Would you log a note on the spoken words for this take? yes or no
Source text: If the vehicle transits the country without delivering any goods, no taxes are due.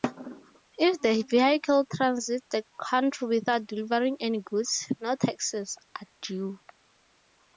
no